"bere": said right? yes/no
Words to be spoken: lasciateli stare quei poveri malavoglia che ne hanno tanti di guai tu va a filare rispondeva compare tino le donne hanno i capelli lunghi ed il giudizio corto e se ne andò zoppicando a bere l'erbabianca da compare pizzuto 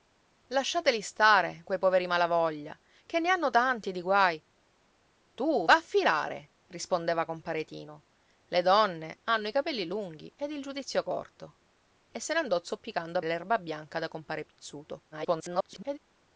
no